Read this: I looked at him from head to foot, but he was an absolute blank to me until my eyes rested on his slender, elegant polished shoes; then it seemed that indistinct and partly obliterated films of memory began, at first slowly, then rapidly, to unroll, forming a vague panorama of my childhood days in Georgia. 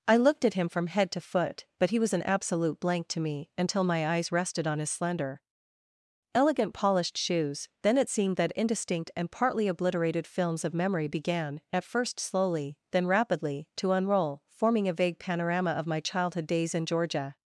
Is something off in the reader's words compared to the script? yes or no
no